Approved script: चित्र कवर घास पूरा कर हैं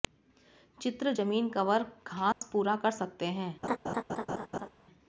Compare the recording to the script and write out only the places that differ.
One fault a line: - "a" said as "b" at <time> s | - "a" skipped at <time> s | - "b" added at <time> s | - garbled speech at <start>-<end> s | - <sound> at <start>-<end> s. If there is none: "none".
- "जमीन" added at 1.1 s
- dropout at 2.3-2.4 s
- "सकते" added at 2.9 s
- laugh at 3.6-4.7 s